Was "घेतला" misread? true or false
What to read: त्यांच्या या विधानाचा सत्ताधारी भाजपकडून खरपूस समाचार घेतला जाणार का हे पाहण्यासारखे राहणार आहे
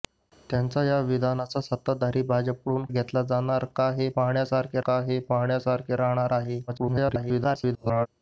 true